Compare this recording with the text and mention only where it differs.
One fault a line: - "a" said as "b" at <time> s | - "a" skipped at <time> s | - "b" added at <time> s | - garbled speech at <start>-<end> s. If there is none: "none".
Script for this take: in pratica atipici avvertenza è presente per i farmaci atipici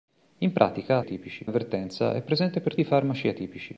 none